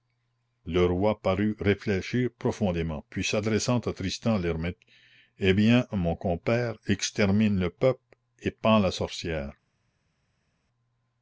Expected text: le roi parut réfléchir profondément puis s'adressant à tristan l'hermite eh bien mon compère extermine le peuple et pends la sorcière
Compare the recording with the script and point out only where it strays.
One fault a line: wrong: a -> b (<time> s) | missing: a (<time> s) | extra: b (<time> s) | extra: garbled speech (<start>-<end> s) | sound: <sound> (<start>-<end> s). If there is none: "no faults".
no faults